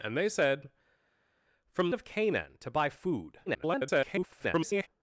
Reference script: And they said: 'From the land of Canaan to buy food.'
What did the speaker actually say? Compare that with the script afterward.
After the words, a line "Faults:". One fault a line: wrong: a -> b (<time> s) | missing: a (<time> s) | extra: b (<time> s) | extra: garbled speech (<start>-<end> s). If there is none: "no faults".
And they said: 'From of Canaan to buy food.' [garbled]
Faults:
missing: the land (1.9 s)
extra: garbled speech (3.5-4.9 s)